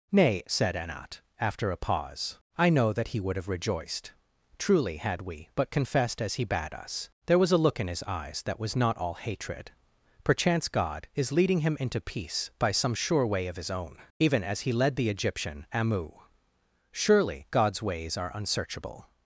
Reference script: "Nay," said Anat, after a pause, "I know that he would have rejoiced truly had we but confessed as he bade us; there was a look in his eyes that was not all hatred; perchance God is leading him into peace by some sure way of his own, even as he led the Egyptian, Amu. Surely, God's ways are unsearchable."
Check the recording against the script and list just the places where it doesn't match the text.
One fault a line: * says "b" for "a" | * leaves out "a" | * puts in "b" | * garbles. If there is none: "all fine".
all fine